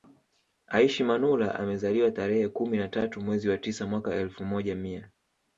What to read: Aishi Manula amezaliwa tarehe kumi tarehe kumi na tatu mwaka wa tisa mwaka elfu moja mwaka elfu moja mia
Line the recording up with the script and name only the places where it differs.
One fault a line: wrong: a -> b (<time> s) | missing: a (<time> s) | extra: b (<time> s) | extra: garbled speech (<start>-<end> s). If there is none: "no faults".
missing: tarehe kumi (2.8 s)
wrong: mwaka -> mwezi (3.2 s)
missing: mwaka elfu moja (4.8 s)